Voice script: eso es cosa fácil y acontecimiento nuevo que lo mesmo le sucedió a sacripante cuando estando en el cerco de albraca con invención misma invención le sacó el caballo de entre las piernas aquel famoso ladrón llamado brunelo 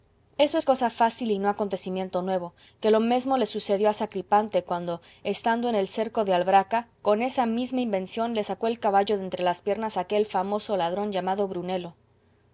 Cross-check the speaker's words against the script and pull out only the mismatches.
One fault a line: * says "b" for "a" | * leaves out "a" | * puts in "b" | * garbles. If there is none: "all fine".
* puts in "no"
* says "esa" for "invención"